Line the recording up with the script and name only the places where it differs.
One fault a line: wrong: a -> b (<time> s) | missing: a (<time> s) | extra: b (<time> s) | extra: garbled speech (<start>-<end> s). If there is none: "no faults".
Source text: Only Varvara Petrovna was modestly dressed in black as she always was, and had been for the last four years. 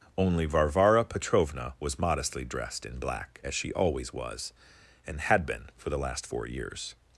no faults